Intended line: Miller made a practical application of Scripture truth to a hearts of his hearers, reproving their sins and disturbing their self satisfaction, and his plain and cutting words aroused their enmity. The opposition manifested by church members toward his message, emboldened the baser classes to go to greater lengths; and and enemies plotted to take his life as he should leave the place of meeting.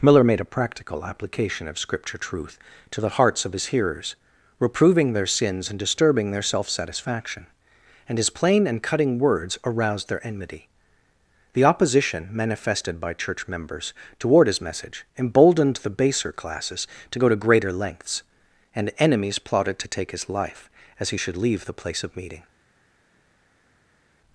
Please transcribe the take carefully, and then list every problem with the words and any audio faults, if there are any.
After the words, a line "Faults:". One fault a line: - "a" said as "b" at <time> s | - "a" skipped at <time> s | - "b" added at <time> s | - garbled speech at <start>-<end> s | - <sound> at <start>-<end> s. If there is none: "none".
Miller made a practical application of Scripture truth to the hearts of his hearers, reproving their sins and disturbing their self satisfaction, and his plain and cutting words aroused their enmity. The opposition manifested by church members toward his message, emboldened the baser classes to go to greater lengths; and enemies plotted to take his life as he should leave the place of meeting.
Faults:
- "a" said as "the" at 3.0 s
- "and" skipped at 18.9 s